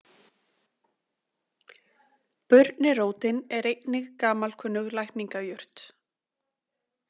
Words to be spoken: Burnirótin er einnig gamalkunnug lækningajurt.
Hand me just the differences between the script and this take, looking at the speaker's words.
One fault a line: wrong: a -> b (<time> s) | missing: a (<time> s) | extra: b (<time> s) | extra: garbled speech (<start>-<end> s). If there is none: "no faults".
no faults